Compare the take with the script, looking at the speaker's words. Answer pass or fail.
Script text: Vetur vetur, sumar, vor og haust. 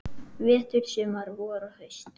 fail